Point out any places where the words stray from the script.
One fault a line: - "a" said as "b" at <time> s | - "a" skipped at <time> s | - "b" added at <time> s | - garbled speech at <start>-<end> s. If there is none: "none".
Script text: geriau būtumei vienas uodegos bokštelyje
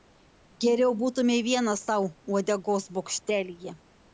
- "sau" added at 1.9 s